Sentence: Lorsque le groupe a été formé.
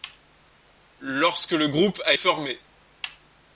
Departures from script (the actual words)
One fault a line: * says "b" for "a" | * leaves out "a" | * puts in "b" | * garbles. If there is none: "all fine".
* leaves out "été"